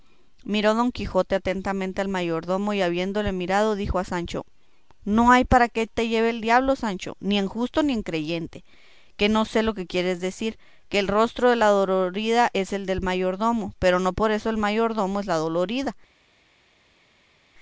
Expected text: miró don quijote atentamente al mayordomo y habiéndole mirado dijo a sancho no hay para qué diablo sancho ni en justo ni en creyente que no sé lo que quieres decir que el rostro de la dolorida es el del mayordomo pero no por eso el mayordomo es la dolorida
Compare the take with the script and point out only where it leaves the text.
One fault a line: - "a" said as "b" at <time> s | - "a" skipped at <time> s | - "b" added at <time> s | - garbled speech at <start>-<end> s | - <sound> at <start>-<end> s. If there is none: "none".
- "te lleve el" added at 5.9 s